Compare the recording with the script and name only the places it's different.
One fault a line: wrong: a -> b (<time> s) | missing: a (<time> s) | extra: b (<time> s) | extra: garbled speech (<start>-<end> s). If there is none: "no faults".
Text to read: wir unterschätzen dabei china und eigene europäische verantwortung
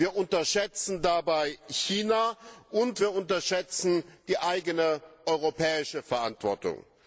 extra: wir unterschätzen die (3.0 s)